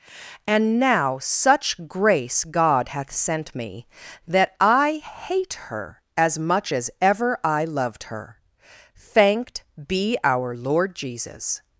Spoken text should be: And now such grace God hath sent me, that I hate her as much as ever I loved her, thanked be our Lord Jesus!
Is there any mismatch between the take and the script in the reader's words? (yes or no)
no